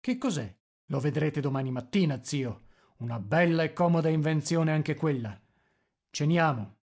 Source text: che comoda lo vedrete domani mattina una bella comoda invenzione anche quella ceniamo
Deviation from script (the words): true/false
true